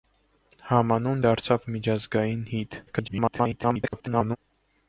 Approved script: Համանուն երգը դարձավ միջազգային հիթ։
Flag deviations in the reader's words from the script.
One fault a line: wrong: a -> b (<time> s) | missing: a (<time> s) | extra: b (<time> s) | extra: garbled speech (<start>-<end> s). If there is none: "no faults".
missing: երգը (1.2 s)
extra: garbled speech (2.9-4.4 s)